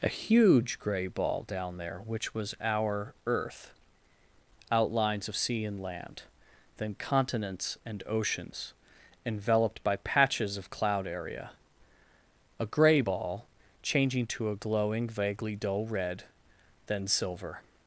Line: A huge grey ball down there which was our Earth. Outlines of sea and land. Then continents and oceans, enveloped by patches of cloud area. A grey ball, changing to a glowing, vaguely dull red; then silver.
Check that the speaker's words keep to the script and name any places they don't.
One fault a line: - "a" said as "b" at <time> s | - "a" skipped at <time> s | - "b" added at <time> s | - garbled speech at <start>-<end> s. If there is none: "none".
none